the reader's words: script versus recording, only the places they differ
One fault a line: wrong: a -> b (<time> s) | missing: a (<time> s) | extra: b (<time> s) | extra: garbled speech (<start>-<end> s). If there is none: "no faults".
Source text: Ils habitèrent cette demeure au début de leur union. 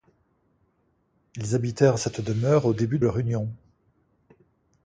missing: de (3.0 s)